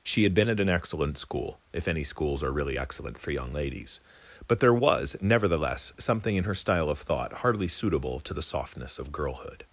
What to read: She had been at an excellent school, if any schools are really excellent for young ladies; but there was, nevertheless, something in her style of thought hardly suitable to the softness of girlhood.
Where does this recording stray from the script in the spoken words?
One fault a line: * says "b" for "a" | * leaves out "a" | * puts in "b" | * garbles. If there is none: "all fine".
all fine